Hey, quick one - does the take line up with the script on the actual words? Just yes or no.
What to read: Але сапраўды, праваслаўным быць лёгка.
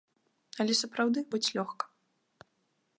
no